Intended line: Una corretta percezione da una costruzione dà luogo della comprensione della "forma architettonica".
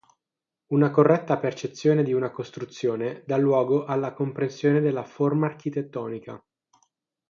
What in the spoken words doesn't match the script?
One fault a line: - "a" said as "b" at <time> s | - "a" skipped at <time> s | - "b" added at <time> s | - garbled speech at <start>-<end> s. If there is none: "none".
- "da" said as "di" at 2.0 s
- "della" said as "alla" at 3.9 s